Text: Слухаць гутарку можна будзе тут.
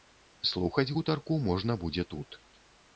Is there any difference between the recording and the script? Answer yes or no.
no